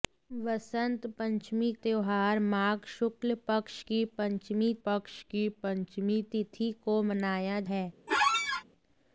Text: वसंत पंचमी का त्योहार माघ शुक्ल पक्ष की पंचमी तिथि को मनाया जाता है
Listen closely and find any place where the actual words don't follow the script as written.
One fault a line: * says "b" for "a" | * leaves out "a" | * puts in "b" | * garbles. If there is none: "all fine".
* leaves out "का"
* puts in "पक्ष की पंचमी"
* leaves out "जाता"